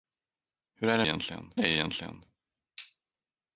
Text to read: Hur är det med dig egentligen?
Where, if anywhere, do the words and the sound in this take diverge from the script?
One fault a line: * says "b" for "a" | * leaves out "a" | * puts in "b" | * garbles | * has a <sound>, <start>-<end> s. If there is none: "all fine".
* says "egentligen" for "med"